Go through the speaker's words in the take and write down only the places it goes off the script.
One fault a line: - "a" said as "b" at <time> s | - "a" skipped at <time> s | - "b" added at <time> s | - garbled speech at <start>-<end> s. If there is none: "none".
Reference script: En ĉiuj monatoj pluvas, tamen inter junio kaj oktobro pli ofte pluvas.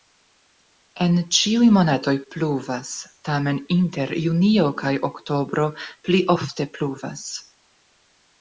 none